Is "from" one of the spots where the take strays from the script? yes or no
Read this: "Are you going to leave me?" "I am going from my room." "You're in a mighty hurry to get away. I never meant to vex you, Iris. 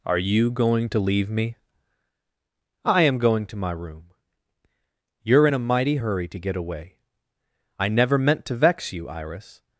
yes